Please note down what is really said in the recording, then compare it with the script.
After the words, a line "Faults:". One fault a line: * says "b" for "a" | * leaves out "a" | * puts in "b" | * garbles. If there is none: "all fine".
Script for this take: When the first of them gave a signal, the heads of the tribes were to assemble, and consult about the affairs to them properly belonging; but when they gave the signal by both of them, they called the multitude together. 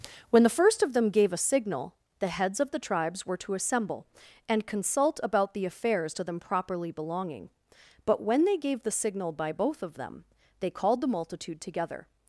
When the first of them gave a signal, the heads of the tribes were to assemble, and consult about the affairs to them properly belonging; but when they gave the signal by both of them, they called the multitude together.
Faults:
all fine